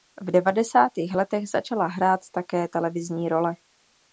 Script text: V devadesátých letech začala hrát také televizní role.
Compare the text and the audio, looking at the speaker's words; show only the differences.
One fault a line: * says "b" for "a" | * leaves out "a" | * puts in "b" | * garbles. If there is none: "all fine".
all fine